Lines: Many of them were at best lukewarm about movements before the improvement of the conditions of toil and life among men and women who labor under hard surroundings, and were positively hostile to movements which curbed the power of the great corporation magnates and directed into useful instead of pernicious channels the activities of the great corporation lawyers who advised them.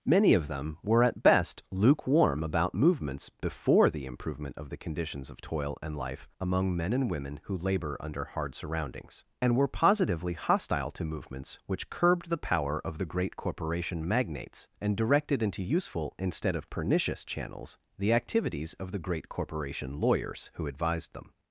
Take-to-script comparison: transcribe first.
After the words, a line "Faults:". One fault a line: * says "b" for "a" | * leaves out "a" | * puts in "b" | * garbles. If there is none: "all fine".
Many of them were at best lukewarm about movements before the improvement of the conditions of toil and life among men and women who labor under hard surroundings, and were positively hostile to movements which curbed the power of the great corporation magnates and directed into useful instead of pernicious channels the activities of the great corporation lawyers who advised them.
Faults:
all fine